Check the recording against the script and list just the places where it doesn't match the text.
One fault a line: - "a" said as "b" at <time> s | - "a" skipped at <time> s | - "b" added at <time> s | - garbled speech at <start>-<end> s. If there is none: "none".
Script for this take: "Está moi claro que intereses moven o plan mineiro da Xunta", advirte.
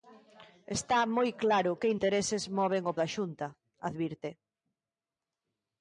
- "plan mineiro" skipped at 2.9 s